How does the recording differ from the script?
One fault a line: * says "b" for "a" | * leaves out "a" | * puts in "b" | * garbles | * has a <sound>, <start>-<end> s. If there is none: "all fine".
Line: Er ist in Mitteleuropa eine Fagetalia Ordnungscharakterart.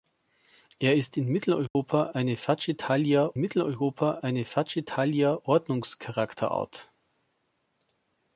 * has a dropout, 1.7-1.8 s
* puts in "Mitteleuropa eine Fagetalia"